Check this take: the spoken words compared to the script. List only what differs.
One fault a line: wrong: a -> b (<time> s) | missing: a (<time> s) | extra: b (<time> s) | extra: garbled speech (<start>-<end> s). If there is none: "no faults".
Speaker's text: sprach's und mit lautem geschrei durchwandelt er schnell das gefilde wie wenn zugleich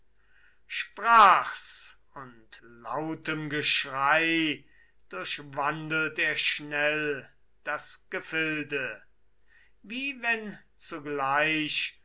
missing: mit (2.6 s)